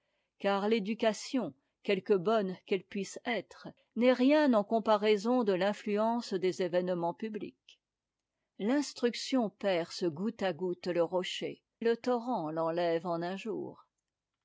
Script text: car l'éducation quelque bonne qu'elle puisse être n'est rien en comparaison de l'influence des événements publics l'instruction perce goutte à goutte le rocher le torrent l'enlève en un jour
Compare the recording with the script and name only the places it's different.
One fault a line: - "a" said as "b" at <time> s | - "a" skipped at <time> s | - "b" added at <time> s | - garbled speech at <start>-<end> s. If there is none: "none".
none